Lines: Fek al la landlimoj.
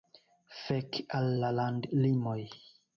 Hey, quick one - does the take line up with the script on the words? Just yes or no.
yes